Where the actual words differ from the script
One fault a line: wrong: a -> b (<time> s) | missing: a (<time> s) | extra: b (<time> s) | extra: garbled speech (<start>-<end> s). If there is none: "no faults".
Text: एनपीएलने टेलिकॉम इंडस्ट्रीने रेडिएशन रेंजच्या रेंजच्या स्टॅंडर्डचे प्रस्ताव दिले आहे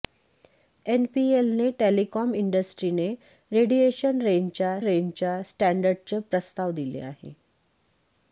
no faults